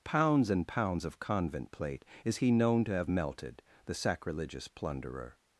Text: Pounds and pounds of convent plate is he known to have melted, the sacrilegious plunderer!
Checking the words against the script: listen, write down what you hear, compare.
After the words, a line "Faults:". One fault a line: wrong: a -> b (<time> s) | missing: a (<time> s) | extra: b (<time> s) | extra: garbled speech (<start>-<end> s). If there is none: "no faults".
Pounds and pounds of convent plate is he known to have melted, the sacrilegious plunderer!
Faults:
no faults